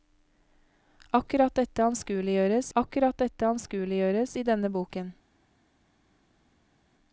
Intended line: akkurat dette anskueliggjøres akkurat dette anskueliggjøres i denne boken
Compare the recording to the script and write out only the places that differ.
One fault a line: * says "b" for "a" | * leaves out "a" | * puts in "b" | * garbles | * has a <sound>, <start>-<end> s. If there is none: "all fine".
all fine